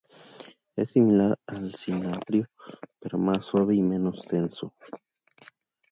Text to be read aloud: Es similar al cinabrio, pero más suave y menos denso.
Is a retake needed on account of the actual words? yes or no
no